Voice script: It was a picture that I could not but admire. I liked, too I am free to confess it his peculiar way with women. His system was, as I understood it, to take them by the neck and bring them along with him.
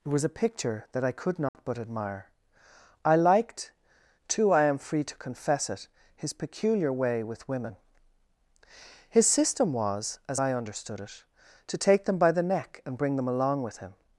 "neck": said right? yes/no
yes